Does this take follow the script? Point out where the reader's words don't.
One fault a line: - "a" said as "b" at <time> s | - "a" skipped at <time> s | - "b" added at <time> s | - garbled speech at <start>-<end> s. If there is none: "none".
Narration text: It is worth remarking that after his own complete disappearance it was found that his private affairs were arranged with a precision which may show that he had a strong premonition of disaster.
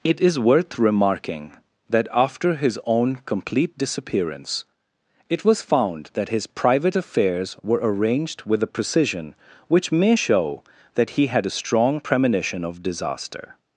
none